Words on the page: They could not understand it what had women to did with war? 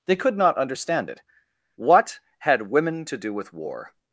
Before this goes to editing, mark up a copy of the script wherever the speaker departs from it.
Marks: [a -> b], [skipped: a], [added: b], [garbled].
They could not understand it what had women to [did -> do] with war?